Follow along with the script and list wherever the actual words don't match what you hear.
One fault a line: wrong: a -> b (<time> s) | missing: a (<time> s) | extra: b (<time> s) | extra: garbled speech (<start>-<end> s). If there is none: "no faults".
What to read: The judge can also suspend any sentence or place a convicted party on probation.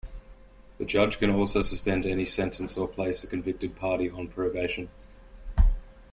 no faults